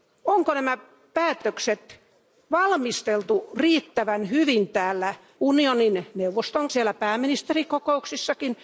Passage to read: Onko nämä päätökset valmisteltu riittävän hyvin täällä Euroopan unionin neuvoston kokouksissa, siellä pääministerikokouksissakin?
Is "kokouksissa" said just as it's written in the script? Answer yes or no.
no